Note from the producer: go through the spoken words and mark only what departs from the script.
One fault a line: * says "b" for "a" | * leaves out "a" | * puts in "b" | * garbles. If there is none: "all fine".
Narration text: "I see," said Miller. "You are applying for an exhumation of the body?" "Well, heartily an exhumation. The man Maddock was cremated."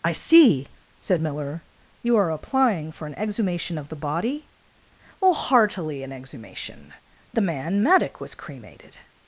all fine